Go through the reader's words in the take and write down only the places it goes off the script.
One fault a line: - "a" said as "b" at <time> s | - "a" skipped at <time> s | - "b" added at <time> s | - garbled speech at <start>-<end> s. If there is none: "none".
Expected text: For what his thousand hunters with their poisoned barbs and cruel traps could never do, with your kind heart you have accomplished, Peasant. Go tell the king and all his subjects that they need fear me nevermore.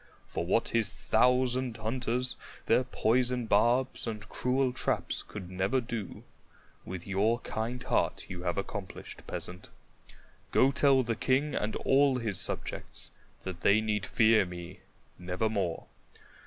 - "with" skipped at 2.4 s